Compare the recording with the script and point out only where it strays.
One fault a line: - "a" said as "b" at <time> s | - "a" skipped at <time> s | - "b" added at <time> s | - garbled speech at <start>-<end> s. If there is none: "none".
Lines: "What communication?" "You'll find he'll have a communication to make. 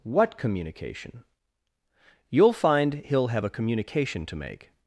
none